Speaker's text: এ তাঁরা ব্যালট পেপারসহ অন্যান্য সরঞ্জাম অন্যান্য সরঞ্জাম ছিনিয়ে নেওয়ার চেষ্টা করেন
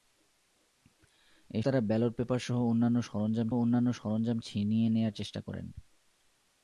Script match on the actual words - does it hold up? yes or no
yes